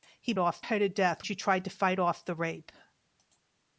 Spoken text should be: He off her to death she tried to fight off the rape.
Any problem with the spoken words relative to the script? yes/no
no